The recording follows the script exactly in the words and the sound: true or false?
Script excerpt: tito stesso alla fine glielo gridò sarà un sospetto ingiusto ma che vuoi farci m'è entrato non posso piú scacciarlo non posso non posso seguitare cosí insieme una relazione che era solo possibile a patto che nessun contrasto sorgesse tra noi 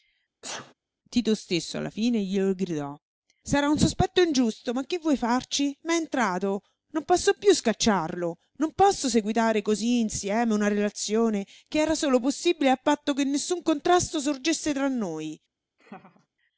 false